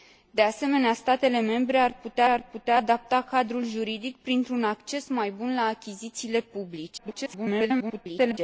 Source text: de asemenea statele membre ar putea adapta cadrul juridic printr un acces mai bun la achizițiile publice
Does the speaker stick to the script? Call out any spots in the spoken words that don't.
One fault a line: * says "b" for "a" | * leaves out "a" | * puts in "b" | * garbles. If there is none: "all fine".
* puts in "ar putea"
* garbles